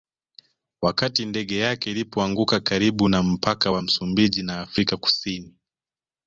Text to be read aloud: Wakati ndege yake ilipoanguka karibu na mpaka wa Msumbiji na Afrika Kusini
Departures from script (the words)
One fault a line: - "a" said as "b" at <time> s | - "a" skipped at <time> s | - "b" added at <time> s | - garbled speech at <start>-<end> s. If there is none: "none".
none